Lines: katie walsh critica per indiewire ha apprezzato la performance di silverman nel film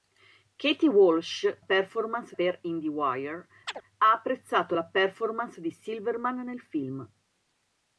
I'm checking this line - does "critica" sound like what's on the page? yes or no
no